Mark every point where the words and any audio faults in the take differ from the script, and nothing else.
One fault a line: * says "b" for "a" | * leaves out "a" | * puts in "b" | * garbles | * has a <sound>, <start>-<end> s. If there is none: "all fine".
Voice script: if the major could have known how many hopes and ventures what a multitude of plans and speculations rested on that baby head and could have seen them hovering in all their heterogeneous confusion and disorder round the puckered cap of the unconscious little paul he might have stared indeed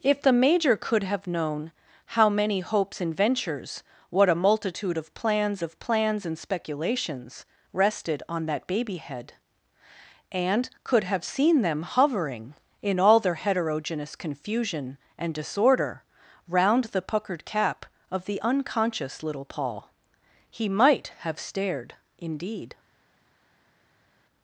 * puts in "of plans"